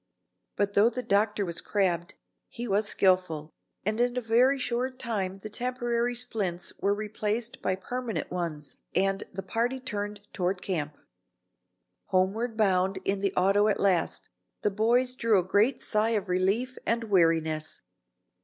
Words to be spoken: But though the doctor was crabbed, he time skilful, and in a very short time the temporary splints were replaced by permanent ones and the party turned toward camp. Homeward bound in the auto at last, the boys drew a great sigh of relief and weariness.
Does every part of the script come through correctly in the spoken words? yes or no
no